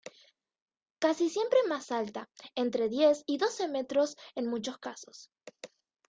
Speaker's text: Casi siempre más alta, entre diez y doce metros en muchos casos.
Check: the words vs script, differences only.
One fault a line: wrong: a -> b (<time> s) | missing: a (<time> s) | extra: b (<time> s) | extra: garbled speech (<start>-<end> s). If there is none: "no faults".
no faults